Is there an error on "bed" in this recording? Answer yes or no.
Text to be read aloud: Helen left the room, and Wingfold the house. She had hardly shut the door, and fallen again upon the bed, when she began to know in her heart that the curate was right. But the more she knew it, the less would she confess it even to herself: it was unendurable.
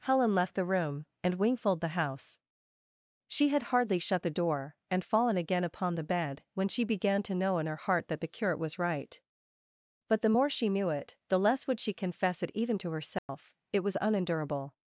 no